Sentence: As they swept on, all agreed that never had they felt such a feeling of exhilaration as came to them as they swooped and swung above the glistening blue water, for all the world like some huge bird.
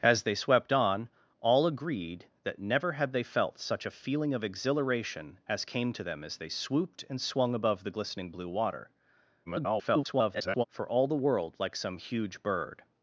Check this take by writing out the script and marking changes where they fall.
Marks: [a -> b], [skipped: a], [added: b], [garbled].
As they swept on, all agreed that never had they felt such a feeling of exhilaration as came to them as they swooped and swung above the glistening blue water, [garbled] for all the world like some huge bird.